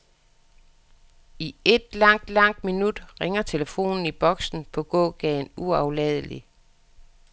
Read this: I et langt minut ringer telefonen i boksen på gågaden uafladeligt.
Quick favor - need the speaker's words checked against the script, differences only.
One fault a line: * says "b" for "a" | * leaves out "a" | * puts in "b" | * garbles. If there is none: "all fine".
* puts in "langt"